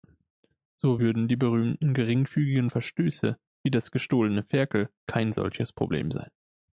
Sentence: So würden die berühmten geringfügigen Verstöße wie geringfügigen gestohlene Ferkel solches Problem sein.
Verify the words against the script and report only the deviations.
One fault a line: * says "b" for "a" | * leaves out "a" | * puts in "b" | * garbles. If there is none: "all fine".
* says "das" for "geringfügigen"
* puts in "kein"